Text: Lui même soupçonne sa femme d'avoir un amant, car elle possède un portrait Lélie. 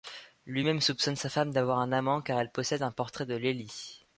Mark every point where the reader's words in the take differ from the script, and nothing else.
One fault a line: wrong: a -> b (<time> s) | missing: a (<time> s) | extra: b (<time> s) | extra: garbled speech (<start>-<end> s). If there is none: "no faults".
extra: de (3.2 s)